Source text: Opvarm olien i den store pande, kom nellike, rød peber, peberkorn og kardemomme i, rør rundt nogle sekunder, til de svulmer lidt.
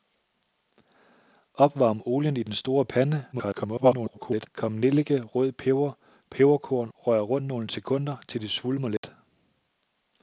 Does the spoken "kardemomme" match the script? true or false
false